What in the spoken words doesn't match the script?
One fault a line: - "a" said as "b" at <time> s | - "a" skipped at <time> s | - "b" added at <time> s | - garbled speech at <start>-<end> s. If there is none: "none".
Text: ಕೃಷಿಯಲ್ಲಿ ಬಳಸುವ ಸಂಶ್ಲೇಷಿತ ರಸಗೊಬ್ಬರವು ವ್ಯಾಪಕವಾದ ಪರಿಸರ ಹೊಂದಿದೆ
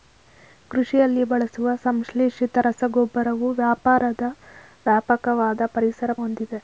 none